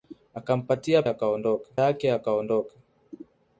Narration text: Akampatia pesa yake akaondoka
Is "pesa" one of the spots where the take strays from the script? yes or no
yes